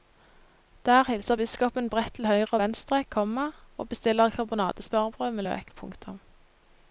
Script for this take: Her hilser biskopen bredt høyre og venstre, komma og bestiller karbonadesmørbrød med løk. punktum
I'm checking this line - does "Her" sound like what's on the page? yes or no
no